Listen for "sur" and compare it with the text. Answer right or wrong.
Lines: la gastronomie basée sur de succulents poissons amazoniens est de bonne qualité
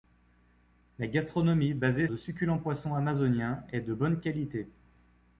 wrong